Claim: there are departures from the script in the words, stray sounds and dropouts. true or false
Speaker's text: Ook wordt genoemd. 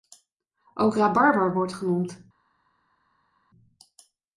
true